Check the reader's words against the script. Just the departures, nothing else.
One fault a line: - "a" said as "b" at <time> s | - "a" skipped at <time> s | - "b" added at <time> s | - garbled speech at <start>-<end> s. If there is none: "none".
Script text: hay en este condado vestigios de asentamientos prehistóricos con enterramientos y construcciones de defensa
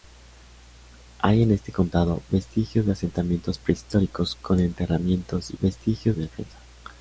- "construcciones" said as "vestigios" at 5.6 s